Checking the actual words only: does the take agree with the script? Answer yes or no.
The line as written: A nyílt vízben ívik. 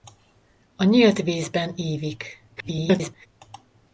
no